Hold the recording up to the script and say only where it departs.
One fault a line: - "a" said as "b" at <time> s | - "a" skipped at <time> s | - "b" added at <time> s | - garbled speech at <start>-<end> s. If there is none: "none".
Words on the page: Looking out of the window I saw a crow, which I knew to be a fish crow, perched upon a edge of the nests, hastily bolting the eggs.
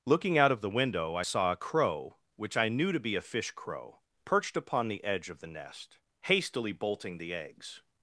- "a" said as "the" at 4.9 s
- "nests" said as "nest" at 5.5 s